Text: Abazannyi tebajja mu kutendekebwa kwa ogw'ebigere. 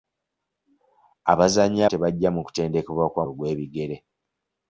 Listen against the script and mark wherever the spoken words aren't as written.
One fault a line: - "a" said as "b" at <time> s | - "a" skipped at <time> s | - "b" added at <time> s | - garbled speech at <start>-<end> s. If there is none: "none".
none